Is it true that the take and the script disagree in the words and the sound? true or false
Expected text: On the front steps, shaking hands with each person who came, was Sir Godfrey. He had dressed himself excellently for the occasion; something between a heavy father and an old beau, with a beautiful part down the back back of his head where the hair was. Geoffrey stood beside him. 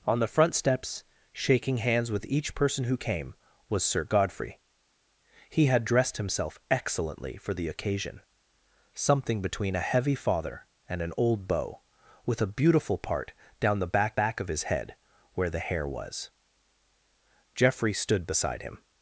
false